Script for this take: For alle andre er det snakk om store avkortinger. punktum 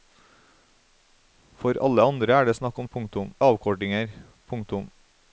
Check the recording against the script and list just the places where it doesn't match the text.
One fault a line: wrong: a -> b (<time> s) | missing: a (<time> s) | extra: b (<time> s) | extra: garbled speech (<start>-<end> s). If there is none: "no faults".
wrong: store -> punktum (2.9 s)